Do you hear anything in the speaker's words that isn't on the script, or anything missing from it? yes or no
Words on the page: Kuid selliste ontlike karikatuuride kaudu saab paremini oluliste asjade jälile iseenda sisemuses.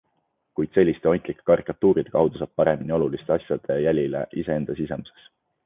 no